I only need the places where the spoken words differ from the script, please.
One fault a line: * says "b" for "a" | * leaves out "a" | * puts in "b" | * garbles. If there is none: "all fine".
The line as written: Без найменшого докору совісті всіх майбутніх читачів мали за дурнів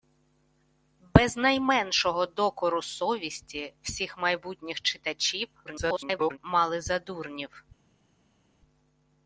* garbles